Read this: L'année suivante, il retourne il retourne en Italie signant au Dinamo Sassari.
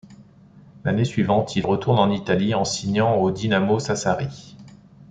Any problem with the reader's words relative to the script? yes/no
yes